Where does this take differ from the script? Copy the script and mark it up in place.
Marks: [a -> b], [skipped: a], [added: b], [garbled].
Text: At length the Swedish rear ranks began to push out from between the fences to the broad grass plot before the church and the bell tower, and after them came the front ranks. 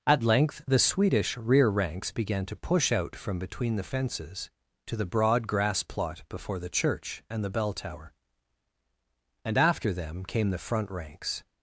At length the Swedish rear ranks began to push out from between the fences to the broad grass plot before the church and the bell tower, and after them came the front ranks.